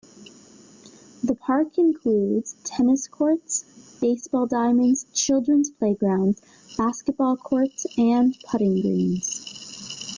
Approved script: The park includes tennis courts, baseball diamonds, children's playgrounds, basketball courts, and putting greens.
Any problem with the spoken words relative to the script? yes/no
no